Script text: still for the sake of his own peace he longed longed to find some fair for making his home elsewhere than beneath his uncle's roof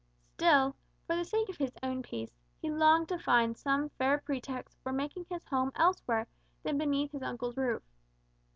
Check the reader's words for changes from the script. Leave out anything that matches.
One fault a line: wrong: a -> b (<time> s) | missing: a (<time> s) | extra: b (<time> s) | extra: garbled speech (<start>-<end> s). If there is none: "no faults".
missing: longed (3.1 s)
extra: pretext (4.2 s)